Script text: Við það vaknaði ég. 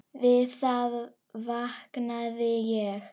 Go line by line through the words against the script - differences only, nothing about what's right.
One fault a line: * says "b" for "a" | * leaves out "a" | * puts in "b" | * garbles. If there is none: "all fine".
all fine